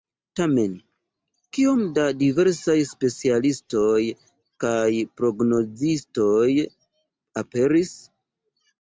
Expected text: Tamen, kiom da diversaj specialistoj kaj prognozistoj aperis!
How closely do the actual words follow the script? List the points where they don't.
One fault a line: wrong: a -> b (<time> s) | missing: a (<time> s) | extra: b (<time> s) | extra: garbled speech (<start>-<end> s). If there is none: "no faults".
no faults